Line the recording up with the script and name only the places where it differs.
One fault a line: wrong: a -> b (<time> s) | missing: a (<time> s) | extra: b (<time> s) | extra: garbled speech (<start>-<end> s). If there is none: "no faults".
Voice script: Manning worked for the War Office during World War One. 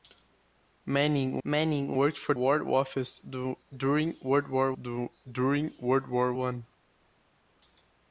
extra: manning (1.4 s)
missing: the (2.3 s)
extra: during World War (4.7 s)